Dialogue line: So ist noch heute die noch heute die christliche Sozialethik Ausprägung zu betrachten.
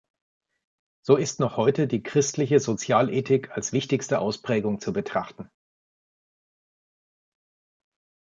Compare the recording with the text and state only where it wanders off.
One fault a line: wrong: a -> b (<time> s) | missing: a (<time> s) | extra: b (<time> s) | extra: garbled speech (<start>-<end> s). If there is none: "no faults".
wrong: noch heute die christliche Sozialethik -> christliche Sozialethik als wichtigste (2.0 s)